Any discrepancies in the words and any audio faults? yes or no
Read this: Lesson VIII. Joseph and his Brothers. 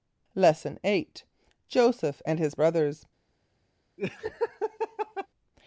yes